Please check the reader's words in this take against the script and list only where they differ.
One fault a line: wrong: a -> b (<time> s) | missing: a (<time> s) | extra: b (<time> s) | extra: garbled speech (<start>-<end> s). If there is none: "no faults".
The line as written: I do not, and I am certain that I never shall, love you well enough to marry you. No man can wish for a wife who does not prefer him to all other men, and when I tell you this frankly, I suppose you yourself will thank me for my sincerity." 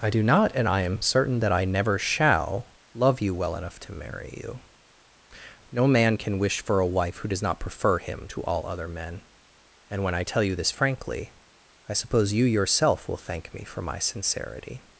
no faults